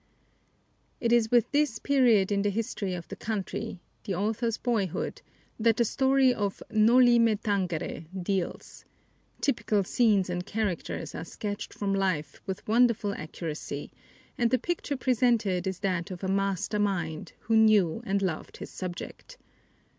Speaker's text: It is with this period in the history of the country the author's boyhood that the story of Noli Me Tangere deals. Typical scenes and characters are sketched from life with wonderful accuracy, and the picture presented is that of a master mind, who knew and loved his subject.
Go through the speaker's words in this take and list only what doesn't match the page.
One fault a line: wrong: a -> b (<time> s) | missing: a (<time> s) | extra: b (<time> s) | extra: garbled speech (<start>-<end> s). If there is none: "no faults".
no faults